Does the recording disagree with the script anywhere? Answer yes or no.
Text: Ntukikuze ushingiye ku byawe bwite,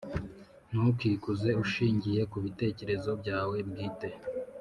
yes